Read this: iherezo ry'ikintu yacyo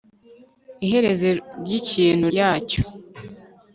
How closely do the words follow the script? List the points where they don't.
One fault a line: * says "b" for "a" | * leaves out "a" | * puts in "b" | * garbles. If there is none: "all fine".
all fine